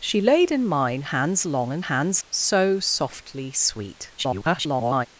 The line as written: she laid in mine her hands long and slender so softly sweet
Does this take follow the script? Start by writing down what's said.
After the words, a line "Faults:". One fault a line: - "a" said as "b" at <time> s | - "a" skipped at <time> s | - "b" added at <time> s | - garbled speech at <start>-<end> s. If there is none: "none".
she laid in mine hands long and hands so softly sweet [garbled]
Faults:
- "her" skipped at 1.0 s
- "slender" said as "hands" at 1.8 s
- garbled speech at 4.2-5.1 s